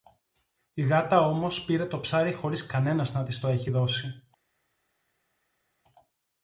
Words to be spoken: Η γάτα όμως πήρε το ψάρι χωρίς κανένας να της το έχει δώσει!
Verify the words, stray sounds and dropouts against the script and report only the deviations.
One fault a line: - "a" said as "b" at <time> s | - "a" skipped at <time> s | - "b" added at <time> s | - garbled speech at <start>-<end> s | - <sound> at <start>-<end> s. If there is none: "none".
none